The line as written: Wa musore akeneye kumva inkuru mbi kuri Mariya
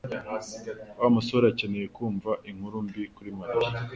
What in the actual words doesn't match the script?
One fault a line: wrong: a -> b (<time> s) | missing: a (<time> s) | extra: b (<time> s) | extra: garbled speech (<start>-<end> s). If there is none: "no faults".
no faults